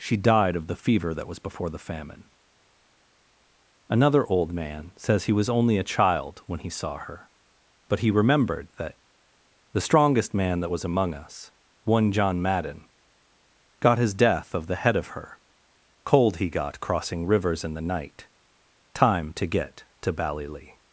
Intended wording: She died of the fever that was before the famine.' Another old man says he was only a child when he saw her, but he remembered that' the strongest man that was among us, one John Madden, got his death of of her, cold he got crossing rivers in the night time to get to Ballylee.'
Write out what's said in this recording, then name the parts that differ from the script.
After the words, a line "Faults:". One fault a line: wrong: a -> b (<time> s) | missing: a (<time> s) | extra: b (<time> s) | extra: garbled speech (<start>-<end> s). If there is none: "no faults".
She died of the fever that was before the famine.' Another old man says he was only a child when he saw her, but he remembered that' the strongest man that was among us, one John Madden, got his death of the head of her, cold he got crossing rivers in the night time to get to Ballylee.'
Faults:
extra: the head (14.7 s)